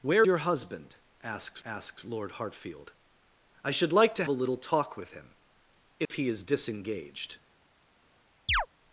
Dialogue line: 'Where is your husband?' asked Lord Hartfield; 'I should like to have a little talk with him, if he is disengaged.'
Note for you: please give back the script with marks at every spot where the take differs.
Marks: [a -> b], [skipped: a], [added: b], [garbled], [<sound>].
'Where [skipped: is] your husband?' asked [added: asked] Lord Hartfield; 'I should like to [skipped: have] a little talk with him, if [dropout] he is disengaged.' [chirp]